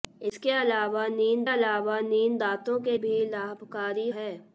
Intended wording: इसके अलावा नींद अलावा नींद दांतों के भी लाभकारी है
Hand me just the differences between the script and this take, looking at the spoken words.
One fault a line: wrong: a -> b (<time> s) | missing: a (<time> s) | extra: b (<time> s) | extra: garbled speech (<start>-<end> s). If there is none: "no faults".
no faults